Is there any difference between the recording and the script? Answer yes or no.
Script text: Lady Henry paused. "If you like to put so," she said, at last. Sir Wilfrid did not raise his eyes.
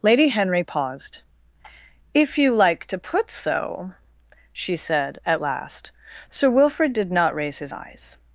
no